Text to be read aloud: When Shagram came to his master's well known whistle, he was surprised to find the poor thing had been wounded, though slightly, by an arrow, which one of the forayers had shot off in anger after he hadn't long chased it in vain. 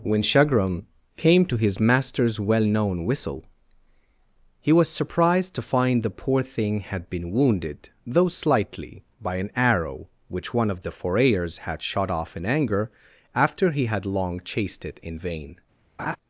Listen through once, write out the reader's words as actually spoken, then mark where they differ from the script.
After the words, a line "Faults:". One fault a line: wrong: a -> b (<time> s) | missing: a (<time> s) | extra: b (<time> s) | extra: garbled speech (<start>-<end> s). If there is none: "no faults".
When Shagram came to his master's well known whistle, he was surprised to find the poor thing had been wounded, though slightly, by an arrow, which one of the forayers had shot off in anger after he had long chased it in vain.
Faults:
wrong: hadn't -> had (13.8 s)